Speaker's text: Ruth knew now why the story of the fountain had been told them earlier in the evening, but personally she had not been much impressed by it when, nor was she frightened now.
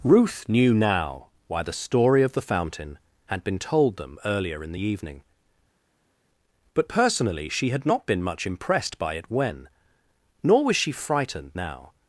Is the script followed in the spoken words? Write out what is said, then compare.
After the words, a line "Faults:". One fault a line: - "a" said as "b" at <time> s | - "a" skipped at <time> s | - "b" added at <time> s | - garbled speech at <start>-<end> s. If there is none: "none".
Ruth knew now why the story of the fountain had been told them earlier in the evening, but personally she had not been much impressed by it when, nor was she frightened now.
Faults:
none